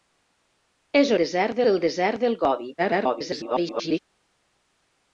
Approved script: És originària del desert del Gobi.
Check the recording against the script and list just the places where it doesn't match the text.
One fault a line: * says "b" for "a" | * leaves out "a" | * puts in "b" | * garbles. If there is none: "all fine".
* says "desert" for "originària"
* garbles